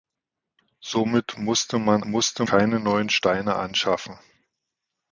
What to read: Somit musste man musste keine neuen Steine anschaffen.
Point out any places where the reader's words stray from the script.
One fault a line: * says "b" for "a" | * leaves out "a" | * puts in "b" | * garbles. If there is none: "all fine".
all fine